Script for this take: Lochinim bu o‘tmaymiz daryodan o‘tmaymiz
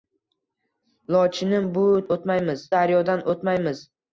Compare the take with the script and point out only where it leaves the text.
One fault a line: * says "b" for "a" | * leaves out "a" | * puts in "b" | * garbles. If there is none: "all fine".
all fine